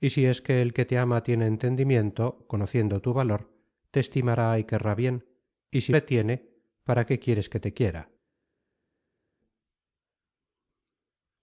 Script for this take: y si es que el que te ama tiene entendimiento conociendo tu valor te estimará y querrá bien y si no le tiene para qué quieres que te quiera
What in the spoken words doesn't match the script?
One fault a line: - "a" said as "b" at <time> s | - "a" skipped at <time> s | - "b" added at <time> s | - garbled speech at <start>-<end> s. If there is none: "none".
- "no" skipped at 5.9 s